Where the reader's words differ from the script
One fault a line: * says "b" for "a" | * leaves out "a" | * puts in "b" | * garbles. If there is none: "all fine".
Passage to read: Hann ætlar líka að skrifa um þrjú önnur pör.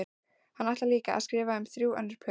all fine